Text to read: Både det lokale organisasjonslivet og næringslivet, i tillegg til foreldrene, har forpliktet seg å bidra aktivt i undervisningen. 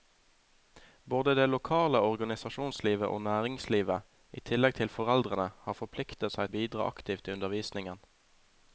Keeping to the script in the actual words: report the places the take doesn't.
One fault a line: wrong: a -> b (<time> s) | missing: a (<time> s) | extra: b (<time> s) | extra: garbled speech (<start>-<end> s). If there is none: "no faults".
no faults